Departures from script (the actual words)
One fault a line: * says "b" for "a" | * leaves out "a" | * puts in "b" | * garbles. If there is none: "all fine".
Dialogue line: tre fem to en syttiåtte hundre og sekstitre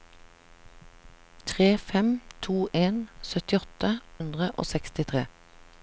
all fine